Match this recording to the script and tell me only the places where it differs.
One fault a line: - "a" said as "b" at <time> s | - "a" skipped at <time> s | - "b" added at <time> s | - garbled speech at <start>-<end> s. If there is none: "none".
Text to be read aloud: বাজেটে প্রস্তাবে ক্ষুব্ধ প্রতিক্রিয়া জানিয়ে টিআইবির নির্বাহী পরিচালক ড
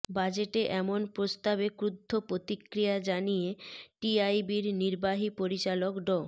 - "এমন" added at 0.7 s